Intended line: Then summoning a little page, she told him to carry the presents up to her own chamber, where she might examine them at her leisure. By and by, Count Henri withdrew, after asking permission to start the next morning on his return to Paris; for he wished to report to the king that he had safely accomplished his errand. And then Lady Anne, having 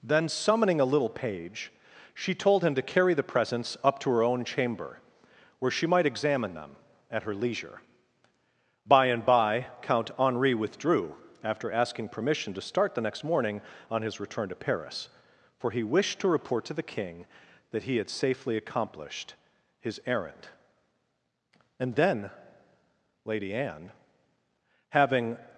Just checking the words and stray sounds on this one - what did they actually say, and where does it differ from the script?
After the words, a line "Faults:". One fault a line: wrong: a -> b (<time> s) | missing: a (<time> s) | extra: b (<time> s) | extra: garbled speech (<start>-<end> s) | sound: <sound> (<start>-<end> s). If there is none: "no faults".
Then summoning a little page, she told him to carry the presents up to her own chamber, where she might examine them at her leisure. By and by, Count Henri withdrew, after asking permission to start the next morning on his return to Paris; for he wished to report to the king that he had safely accomplished his errand. And then Lady Anne, having
Faults:
no faults